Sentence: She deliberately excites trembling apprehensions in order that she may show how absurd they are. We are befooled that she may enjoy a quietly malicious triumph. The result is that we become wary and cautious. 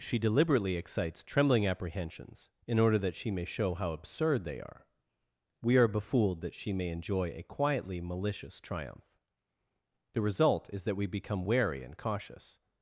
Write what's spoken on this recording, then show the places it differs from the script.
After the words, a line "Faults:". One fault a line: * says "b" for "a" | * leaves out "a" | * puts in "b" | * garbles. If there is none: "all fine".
She deliberately excites trembling apprehensions in order that she may show how absurd they are. We are befooled that she may enjoy a quietly malicious triumph. The result is that we become wary and cautious.
Faults:
all fine